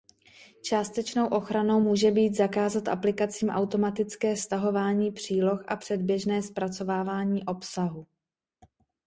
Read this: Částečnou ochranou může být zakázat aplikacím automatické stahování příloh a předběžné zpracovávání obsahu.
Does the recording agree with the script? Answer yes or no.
yes